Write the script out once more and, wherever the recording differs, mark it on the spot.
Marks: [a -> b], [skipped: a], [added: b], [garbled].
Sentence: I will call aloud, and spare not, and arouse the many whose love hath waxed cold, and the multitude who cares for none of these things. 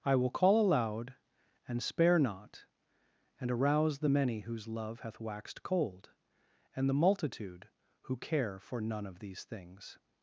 I will call aloud, and spare not, and arouse the many whose love hath waxed cold, and the multitude who [cares -> care] for none of these things.